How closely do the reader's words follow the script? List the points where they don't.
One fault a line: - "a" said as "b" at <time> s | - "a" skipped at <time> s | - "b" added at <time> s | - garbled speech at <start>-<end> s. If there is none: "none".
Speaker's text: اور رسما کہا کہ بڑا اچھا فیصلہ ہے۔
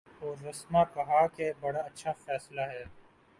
none